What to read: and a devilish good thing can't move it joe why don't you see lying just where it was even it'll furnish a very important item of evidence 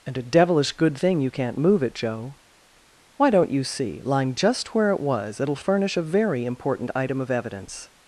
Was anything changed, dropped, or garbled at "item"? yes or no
no